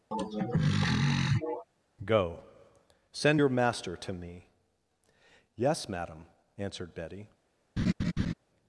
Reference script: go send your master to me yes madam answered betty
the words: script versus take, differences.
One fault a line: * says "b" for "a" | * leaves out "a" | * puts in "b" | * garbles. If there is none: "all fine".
all fine